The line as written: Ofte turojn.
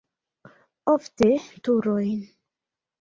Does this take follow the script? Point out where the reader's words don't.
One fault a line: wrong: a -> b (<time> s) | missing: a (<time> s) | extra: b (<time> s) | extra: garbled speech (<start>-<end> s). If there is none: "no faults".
no faults